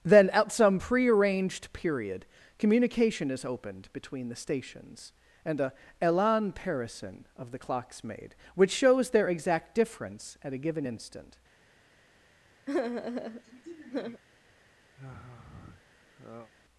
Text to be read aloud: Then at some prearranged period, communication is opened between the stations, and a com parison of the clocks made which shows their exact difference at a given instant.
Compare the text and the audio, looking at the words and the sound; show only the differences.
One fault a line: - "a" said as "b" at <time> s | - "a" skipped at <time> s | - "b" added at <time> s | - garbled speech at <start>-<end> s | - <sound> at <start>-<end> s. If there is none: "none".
- "com" said as "elan" at 6.0 s
- sigh at 12.7-14.2 s
- sigh at 14.9-16.5 s